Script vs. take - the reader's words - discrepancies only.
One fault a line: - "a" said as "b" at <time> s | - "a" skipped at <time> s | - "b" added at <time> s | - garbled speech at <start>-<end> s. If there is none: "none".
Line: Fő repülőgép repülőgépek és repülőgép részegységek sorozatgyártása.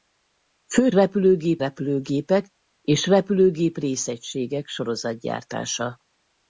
none